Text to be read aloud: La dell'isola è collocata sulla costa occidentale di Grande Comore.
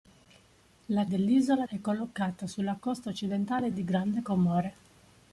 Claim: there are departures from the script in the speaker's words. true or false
false